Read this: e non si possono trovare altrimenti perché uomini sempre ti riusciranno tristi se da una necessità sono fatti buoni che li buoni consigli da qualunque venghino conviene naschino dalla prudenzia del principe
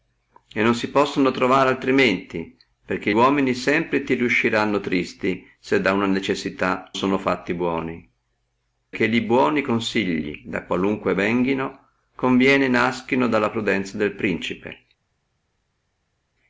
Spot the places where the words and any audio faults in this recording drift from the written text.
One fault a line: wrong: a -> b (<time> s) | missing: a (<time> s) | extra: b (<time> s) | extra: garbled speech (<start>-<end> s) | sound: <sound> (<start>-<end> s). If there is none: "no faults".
no faults